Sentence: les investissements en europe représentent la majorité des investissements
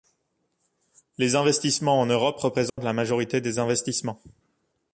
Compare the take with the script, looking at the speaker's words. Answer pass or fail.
pass